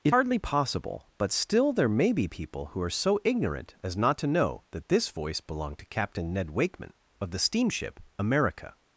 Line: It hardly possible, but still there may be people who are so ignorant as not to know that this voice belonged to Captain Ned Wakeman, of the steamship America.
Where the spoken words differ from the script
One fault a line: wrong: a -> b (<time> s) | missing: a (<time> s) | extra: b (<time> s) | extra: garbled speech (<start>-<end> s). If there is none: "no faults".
no faults